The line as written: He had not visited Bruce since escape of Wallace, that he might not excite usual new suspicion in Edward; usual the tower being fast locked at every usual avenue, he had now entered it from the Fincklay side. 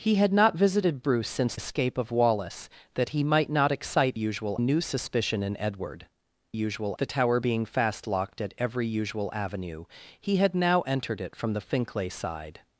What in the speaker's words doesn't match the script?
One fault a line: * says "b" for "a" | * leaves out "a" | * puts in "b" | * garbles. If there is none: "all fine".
all fine